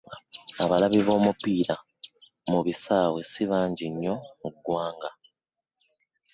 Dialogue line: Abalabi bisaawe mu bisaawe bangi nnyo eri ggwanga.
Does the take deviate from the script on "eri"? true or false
true